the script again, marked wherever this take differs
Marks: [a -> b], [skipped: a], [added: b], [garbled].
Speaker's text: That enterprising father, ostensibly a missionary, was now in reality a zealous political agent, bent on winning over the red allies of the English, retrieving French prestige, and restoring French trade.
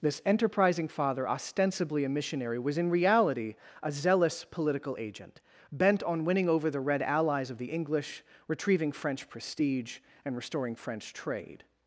[That -> This] enterprising father, ostensibly a missionary, was [skipped: now] in reality a zealous political agent, bent on winning over the red allies of the English, retrieving French prestige, and restoring French trade.